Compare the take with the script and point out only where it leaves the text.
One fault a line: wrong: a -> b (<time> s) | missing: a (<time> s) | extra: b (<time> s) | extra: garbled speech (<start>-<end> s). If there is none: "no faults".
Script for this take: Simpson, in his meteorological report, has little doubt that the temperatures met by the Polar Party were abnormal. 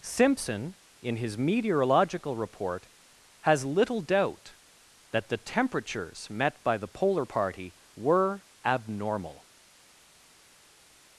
no faults